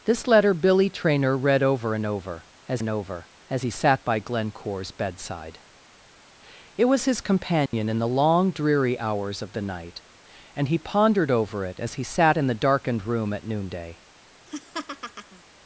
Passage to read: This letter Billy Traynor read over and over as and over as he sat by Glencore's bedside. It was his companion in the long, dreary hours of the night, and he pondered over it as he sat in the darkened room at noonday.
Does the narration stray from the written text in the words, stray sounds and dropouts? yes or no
yes